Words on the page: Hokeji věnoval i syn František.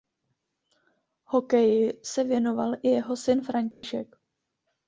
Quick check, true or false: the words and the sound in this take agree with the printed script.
false